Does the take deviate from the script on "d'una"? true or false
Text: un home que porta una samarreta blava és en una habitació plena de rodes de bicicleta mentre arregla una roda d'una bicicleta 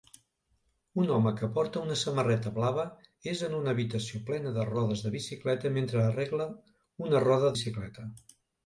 true